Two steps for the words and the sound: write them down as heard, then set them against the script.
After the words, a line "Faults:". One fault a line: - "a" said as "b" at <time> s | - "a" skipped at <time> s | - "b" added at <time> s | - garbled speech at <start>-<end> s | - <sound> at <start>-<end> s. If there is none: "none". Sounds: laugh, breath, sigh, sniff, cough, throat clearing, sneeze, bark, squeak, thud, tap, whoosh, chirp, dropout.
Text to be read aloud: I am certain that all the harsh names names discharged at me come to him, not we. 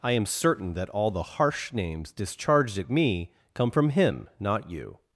I am certain that all the harsh names discharged at me come from him, not you.
Faults:
- "names" skipped at 2.1 s
- "to" said as "from" at 3.7 s
- "we" said as "you" at 4.7 s